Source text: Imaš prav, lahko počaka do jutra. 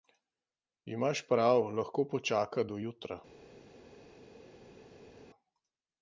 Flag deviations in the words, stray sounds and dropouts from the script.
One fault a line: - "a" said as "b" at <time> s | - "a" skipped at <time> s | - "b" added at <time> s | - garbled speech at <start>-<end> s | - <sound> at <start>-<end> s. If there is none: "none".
none